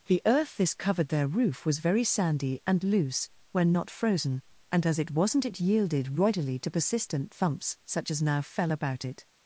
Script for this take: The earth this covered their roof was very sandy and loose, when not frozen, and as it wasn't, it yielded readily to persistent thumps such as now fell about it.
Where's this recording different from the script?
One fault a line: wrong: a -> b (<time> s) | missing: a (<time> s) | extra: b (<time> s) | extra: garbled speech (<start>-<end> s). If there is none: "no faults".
no faults